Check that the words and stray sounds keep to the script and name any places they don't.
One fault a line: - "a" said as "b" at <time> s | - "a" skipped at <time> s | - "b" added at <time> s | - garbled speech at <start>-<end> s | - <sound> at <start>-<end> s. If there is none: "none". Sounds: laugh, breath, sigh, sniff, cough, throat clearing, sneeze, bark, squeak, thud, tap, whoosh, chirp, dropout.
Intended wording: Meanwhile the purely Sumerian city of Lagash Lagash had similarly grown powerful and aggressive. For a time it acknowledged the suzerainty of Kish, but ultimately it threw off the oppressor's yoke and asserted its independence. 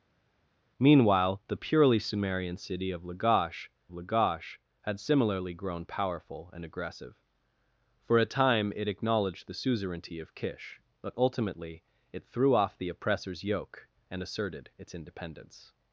none